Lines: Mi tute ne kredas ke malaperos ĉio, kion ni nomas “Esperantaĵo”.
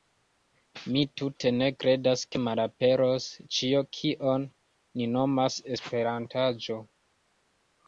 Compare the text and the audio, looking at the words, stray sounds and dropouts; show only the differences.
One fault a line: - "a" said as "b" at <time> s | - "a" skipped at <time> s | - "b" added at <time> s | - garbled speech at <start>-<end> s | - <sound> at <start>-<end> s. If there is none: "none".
none